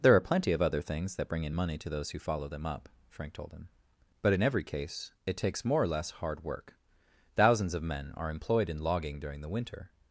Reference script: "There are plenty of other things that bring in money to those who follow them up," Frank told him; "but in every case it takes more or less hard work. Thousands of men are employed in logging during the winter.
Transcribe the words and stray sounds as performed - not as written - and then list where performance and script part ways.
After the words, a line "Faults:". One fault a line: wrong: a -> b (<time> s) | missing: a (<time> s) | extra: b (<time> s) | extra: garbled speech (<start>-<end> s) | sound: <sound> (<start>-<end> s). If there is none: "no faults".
"There are plenty of other things that bring in money to those who follow them up," Frank told him; "but in every case it takes more or less hard work. Thousands of men are employed in logging during the winter.
Faults:
no faults